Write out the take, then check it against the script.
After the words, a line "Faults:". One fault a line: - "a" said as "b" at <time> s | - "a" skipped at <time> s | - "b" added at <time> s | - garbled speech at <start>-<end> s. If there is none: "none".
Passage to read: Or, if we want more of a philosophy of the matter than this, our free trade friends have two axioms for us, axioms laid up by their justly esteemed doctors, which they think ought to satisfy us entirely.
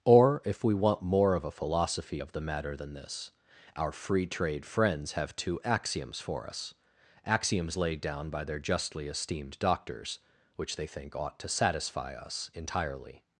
Or, if we want more of a philosophy of the matter than this, our free trade friends have two axioms for us, axioms laid down by their justly esteemed doctors, which they think ought to satisfy us entirely.
Faults:
- "up" said as "down" at 8.0 s